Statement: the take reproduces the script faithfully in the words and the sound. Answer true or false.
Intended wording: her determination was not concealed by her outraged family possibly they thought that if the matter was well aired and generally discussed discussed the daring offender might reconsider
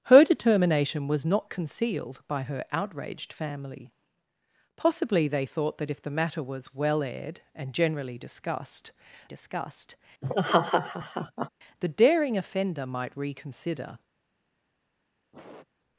false